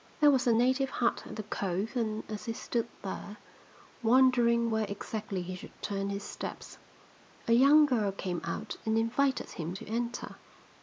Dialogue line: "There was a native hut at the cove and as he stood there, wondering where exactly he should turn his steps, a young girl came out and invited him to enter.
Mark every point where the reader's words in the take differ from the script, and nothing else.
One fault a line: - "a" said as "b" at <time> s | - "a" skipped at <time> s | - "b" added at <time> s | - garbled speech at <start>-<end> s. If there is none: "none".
none